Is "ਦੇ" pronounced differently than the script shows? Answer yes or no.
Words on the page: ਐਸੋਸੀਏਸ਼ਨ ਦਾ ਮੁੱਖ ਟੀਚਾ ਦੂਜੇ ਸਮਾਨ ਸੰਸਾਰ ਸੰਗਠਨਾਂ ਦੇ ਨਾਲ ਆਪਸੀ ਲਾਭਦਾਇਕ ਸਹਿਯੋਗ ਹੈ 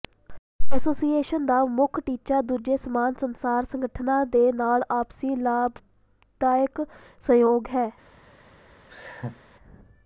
no